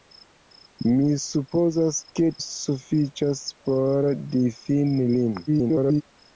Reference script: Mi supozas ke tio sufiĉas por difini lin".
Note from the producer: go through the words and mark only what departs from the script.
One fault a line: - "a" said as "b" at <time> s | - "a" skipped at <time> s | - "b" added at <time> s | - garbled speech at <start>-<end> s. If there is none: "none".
- "tio" skipped at 2.3 s
- garbled speech at 5.5-6.0 s